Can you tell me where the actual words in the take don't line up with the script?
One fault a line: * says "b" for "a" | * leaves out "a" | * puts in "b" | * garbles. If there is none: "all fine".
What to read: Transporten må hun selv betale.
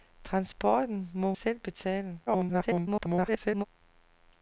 * leaves out "hun"
* garbles